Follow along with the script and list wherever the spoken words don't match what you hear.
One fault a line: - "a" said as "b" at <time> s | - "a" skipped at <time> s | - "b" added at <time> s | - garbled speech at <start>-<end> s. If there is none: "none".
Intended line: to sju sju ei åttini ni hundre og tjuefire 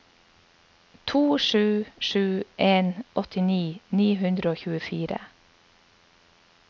- "ei" said as "en" at 2.6 s